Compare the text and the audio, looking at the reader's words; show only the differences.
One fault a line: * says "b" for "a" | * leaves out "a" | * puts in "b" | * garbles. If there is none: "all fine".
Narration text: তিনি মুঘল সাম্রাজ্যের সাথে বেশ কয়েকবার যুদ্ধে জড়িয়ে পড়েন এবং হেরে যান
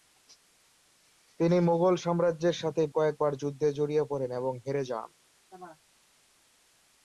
* leaves out "বেশ"